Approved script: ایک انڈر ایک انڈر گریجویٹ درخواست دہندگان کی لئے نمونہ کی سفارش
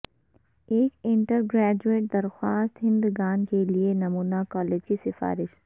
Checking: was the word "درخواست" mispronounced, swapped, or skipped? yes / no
no